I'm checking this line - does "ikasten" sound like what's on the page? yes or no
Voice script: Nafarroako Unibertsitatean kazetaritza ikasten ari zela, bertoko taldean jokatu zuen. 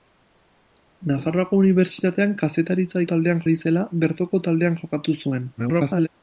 no